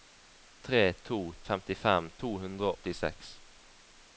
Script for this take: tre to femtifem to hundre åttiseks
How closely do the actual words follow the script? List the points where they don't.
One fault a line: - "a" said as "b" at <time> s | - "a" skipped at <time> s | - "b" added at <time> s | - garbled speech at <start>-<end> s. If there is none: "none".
none